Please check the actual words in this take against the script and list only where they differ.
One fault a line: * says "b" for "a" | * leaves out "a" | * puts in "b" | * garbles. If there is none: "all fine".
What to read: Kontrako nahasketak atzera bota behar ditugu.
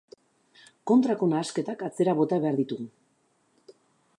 all fine